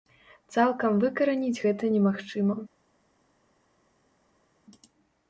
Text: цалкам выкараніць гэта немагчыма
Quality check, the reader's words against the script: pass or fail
pass